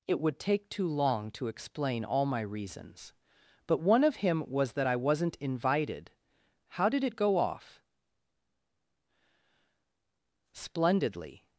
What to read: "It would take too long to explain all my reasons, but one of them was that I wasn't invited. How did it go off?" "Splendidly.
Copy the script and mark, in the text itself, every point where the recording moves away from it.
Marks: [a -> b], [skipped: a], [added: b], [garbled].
"It would take too long to explain all my reasons, but one of [them -> him] was that I wasn't invited. How did it go off?" "Splendidly.